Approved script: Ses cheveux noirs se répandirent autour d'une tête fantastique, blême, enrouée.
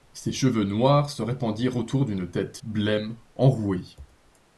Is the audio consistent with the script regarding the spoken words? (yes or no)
no